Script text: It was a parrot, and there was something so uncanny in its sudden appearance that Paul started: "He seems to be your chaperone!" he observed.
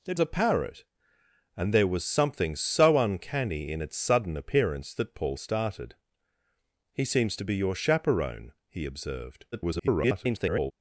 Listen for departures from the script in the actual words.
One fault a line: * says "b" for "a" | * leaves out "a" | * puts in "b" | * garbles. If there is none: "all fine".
* leaves out "was"
* garbles